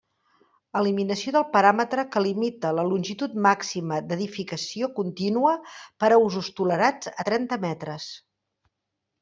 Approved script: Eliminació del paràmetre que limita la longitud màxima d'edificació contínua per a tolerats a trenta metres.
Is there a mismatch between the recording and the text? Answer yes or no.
yes